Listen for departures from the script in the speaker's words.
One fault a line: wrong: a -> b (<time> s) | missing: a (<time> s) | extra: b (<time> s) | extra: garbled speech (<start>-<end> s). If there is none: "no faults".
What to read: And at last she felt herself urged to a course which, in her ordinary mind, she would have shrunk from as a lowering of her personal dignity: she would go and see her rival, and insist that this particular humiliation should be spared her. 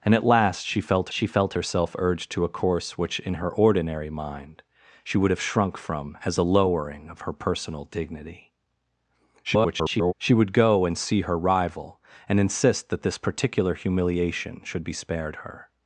extra: she felt (1.1 s)
extra: garbled speech (9.4-10.1 s)